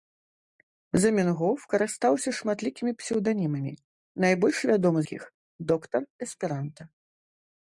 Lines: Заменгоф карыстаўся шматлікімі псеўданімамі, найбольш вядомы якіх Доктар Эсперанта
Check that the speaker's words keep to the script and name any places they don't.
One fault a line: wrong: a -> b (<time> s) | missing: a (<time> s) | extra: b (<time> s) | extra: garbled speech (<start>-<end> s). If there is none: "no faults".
no faults